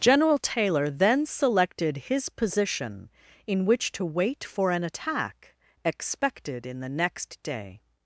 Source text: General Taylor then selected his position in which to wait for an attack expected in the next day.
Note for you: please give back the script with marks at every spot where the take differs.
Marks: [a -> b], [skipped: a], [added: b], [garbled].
General Taylor then selected his position in which to wait for an attack expected in the next day.